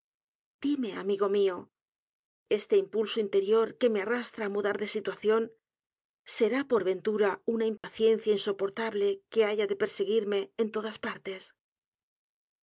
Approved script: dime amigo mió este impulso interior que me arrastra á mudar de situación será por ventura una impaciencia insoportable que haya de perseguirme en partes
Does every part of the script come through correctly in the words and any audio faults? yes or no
no